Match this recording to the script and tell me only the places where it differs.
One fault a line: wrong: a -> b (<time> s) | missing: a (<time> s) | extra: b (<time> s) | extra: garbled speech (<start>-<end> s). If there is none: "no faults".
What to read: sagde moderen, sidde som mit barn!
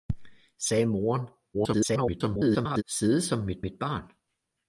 extra: garbled speech (1.5-2.8 s)
extra: mit (3.6 s)